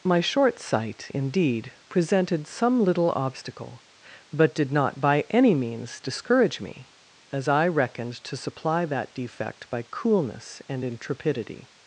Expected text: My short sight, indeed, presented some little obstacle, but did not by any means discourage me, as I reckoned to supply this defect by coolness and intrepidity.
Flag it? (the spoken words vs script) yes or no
yes